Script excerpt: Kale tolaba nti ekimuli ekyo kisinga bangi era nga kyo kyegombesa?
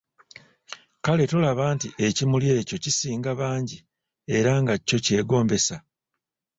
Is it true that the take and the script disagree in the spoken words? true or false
false